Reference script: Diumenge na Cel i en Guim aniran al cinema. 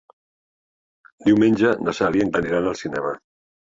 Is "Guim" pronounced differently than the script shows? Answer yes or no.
yes